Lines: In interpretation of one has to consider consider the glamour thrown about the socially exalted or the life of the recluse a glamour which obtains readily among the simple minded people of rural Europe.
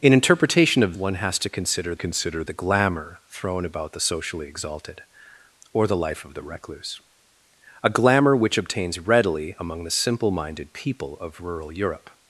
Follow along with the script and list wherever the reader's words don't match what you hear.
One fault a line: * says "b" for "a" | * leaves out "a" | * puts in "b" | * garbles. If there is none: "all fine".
all fine